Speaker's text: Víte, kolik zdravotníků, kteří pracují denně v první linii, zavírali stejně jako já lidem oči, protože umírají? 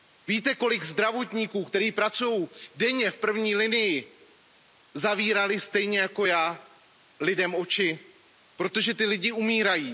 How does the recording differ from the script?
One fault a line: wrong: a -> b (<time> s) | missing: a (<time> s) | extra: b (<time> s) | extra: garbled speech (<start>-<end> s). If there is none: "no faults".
extra: ti lidé (8.9 s)